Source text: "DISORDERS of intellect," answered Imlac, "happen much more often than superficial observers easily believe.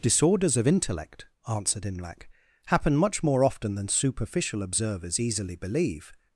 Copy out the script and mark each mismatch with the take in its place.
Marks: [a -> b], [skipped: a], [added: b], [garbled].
"DISORDERS of intellect," answered Imlac, "happen much more often than superficial observers easily believe.